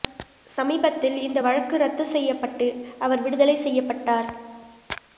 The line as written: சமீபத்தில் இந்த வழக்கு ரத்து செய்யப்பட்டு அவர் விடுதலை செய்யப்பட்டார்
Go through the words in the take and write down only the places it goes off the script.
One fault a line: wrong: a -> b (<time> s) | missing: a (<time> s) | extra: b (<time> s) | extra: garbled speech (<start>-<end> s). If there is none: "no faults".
no faults